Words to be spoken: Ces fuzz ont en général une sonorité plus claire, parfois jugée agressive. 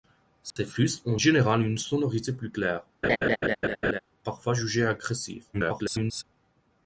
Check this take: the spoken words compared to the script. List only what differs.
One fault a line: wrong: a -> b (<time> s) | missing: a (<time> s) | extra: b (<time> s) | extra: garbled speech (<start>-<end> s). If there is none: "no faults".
missing: en (1.2 s)
extra: garbled speech (5.5-6.2 s)